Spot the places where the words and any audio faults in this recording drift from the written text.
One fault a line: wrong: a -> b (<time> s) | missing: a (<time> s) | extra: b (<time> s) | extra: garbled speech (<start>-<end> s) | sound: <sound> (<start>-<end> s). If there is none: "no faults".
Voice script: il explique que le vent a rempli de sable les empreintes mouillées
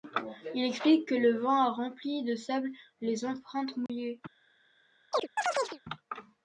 sound: dropout (3.9-3.9 s)
sound: chirp (5.1-5.8 s)